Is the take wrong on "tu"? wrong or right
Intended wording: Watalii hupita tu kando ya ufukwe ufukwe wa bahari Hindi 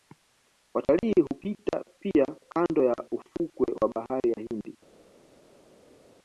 wrong